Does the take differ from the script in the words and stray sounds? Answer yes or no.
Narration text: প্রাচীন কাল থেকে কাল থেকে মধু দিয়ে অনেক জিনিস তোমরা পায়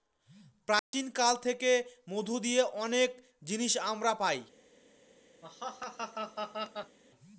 yes